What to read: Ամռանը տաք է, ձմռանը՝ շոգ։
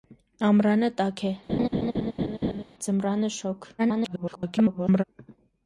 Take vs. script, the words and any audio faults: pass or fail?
fail